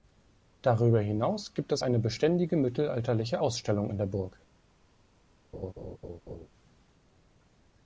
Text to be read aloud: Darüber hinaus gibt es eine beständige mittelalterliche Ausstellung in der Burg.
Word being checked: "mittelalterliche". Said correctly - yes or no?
yes